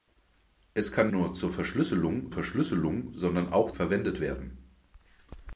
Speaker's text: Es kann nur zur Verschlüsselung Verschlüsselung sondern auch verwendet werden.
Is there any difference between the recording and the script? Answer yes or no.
no